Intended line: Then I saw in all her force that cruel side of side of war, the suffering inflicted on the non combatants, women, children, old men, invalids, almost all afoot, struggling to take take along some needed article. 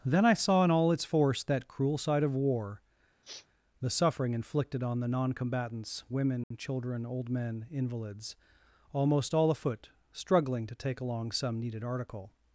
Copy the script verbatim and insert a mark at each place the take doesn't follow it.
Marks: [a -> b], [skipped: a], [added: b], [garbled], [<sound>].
Then I saw in all [her -> its] force that cruel side of [skipped: side of] war, [sniff] the suffering inflicted on the non combatants, women, [dropout] children, old men, invalids, almost all afoot, struggling to take [skipped: take] along some needed article.